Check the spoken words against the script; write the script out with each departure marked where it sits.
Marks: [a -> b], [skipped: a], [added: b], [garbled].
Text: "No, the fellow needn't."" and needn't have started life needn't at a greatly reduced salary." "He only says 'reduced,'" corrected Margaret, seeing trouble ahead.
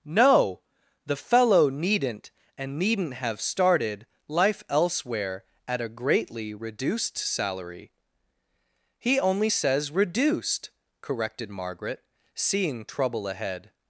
"No, the fellow needn't."" and needn't have started life [needn't -> elsewhere] at a greatly reduced salary." "He only says 'reduced,'" corrected Margaret, seeing trouble ahead.